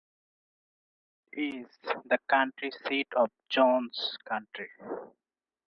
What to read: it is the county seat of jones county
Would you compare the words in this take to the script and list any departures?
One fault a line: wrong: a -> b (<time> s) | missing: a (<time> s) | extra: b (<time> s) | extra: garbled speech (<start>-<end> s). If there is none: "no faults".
no faults